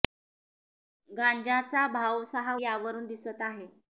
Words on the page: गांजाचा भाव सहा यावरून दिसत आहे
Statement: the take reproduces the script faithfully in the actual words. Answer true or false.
true